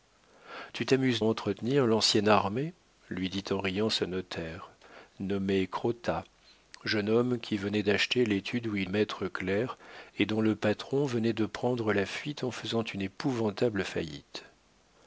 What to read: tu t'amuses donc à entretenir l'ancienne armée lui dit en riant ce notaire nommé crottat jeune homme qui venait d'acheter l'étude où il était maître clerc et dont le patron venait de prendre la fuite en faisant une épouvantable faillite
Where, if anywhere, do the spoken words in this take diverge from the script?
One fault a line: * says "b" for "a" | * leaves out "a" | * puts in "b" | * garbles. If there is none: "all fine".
* leaves out "donc à"
* leaves out "était"